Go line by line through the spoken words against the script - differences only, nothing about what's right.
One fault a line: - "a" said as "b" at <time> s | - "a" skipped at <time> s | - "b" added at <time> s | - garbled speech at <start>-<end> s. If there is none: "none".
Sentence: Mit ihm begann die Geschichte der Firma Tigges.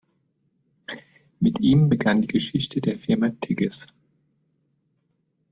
none